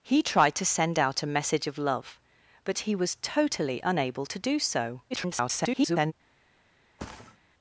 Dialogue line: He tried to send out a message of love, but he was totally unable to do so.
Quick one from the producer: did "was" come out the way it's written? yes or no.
yes